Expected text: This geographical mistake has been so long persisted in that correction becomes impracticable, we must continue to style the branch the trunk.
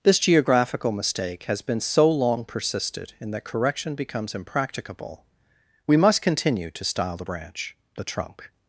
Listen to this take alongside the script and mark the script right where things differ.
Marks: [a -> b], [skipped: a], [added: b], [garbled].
This geographical mistake has been so long persisted in that correction becomes impracticable, we must continue to style the branch the trunk.